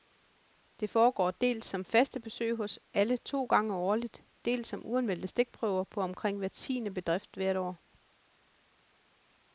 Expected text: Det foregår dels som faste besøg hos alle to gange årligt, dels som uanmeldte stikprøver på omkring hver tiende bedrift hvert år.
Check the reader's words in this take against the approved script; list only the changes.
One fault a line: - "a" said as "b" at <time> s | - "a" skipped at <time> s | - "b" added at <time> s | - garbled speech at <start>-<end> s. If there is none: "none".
none